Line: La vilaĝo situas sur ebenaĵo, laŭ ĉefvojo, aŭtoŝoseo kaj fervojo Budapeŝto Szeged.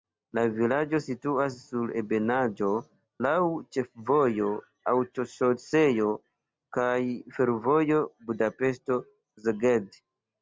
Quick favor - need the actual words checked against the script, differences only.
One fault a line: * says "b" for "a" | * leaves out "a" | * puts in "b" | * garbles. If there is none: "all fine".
all fine